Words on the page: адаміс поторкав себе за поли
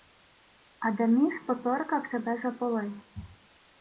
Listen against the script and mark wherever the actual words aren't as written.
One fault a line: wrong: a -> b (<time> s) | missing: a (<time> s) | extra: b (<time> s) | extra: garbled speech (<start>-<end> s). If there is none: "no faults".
no faults